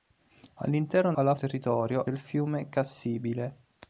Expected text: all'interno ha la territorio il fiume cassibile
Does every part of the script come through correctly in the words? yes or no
yes